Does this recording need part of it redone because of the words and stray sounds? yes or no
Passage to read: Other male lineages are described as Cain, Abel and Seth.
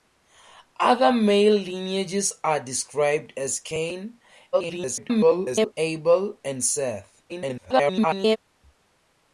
yes